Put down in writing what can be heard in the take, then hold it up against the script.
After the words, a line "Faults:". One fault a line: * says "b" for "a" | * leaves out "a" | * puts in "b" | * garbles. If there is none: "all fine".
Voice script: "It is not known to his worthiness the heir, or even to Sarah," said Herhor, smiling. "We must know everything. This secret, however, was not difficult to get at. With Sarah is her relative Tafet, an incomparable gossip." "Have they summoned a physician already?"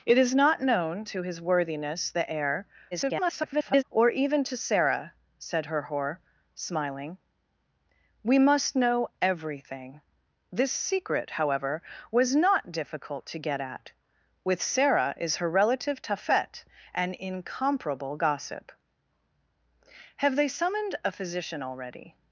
"It is not known to his worthiness the heir, [garbled] or even to Sarah," said Herhor, smiling. "We must know everything. This secret, however, was not difficult to get at. With Sarah is her relative Tafet, an incomparable gossip." "Have they summoned a physician already?"
Faults:
* garbles